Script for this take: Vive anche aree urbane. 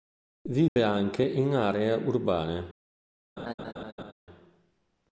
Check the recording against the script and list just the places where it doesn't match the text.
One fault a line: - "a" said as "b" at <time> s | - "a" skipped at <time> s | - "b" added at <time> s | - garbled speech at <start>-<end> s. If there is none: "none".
- "in" added at 1.2 s